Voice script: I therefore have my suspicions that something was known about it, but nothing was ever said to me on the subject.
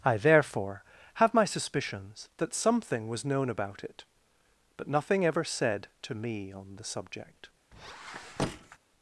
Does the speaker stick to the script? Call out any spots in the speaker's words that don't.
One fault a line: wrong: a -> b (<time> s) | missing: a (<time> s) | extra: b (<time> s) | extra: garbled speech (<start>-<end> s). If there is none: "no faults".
missing: was (5.2 s)